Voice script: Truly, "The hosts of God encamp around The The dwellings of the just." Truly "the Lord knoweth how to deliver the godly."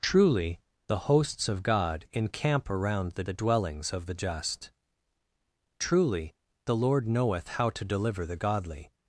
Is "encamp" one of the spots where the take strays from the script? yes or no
no